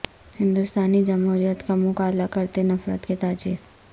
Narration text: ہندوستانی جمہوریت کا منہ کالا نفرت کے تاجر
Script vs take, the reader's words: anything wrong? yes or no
yes